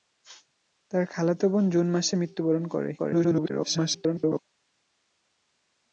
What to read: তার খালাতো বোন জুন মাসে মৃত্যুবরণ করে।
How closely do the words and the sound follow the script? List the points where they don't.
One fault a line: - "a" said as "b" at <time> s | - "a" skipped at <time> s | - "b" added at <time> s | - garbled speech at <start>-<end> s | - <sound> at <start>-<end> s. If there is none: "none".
- garbled speech at 3.0-4.4 s